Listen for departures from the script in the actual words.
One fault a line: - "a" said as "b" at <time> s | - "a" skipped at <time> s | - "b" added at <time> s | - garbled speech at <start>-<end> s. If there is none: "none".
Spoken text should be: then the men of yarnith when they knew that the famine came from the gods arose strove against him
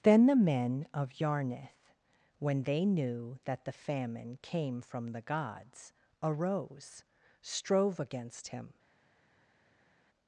none